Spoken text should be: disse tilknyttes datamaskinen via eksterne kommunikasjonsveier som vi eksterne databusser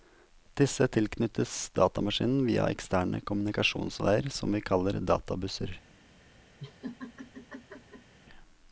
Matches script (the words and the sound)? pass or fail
fail